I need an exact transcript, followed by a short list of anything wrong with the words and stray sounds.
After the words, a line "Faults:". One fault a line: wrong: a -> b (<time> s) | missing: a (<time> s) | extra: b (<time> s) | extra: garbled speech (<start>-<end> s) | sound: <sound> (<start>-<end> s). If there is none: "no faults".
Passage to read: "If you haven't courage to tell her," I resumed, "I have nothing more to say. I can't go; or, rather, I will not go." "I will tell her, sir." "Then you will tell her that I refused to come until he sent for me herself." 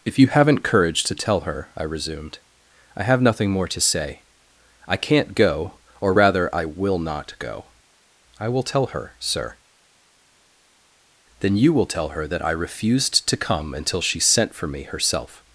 "If you haven't courage to tell her," I resumed, "I have nothing more to say. I can't go; or, rather, I will not go." "I will tell her, sir." "Then you will tell her that I refused to come until she sent for me herself."
Faults:
wrong: he -> she (14.0 s)